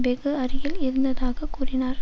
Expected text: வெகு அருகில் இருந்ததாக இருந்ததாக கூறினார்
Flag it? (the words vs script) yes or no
yes